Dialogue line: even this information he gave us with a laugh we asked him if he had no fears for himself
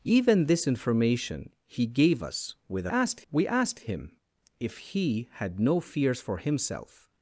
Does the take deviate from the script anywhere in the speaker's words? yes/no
yes